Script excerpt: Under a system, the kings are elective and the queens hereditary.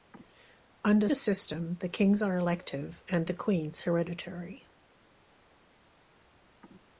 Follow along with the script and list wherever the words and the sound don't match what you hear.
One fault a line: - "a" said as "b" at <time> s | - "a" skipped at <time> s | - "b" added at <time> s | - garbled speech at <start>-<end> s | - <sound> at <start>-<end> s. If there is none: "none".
none